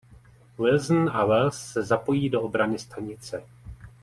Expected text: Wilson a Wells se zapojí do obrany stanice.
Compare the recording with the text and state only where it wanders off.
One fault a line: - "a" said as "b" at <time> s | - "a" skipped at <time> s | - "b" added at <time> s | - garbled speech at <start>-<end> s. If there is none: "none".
none